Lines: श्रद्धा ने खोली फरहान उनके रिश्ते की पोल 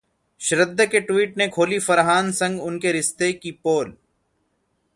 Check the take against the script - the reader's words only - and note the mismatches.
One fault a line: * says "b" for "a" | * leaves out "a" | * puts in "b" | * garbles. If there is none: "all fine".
* puts in "के ट्वीट"
* puts in "संग"